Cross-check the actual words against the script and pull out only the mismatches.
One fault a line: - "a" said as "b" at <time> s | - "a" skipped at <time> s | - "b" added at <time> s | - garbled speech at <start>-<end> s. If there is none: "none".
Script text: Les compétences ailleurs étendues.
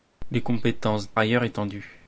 none